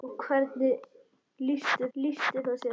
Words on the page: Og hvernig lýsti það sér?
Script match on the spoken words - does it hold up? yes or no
no